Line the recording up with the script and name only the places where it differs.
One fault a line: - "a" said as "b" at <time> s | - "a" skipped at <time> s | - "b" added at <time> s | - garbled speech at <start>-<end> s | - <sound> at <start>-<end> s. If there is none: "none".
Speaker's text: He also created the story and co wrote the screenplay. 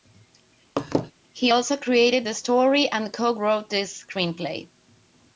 - laugh at 0.8-1.1 s